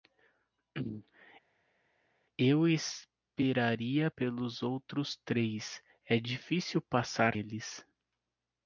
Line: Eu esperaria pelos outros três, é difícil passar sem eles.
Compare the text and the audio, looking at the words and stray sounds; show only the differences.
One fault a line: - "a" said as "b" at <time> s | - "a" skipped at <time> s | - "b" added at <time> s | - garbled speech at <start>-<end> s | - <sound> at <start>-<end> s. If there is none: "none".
- "sem" skipped at 7.4 s